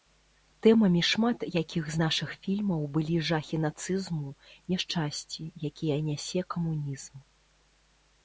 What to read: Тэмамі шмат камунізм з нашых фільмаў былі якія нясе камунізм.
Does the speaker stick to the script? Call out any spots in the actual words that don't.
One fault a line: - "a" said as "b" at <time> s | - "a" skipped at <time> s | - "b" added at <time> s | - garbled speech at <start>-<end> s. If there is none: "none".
- "камунізм" said as "якіх" at 1.6 s
- "жахі нацызму няшчасці" added at 3.3 s